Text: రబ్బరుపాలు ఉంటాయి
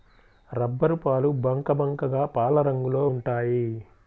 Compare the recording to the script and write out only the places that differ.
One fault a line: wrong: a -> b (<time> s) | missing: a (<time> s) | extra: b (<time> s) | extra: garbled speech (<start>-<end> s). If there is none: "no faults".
extra: బంకబంకగా పాలరంగులో (1.4 s)